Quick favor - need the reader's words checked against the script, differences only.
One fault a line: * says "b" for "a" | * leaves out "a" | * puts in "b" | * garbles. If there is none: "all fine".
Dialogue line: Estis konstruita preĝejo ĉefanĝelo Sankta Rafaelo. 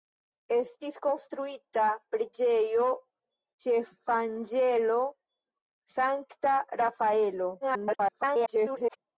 * garbles